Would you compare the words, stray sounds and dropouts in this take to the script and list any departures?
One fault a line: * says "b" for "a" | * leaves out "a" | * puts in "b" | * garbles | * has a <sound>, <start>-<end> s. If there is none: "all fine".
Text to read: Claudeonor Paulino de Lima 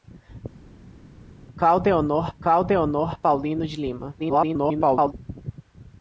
* puts in "claudeonor"
* garbles